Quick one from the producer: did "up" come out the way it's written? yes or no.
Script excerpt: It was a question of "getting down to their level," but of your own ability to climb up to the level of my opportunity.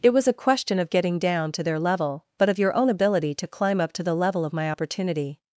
yes